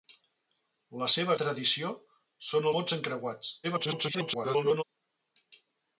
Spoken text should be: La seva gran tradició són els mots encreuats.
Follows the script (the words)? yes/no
no